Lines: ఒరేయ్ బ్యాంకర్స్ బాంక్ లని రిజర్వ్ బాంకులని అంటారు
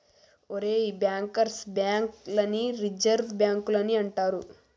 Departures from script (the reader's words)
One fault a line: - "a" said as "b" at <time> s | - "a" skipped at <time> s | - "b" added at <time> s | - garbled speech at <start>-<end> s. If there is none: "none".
none